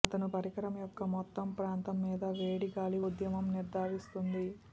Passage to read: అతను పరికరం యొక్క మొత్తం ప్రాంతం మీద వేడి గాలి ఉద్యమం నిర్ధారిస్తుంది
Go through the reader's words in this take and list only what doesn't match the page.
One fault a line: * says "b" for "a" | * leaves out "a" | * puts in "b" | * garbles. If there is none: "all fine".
all fine